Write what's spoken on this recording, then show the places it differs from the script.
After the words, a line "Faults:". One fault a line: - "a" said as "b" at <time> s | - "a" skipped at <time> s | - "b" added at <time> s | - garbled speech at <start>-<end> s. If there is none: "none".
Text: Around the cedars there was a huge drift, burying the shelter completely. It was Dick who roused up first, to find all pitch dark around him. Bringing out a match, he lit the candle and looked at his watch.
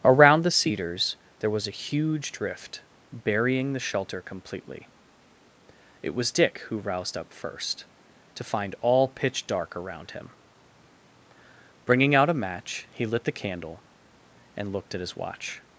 Around the cedars there was a huge drift, burying the shelter completely. It was Dick who roused up first, to find all pitch dark around him. Bringing out a match, he lit the candle and looked at his watch.
Faults:
none